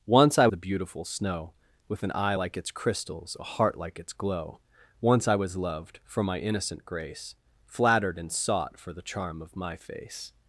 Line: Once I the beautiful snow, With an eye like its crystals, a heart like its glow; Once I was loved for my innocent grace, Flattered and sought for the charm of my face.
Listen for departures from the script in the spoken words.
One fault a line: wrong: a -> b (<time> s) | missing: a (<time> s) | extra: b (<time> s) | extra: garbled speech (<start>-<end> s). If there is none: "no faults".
no faults